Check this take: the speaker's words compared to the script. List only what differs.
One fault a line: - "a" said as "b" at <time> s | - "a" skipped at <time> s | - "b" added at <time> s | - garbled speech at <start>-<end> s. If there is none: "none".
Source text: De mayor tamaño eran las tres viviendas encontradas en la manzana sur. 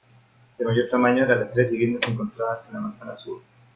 none